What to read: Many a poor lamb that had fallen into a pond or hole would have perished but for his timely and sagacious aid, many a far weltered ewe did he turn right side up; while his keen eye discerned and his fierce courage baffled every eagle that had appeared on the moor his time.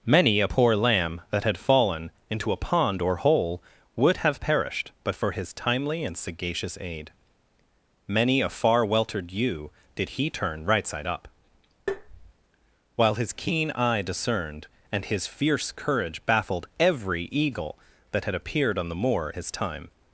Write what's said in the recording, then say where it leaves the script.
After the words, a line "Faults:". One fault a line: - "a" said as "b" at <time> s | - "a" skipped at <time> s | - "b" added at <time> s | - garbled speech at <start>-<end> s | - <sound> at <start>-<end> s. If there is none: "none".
Many a poor lamb that had fallen into a pond or hole would have perished but for his timely and sagacious aid, many a far weltered ewe did he turn right side up; while his keen eye discerned and his fierce courage baffled every eagle that had appeared on the moor his time.
Faults:
- tap at 11.9-12.3 s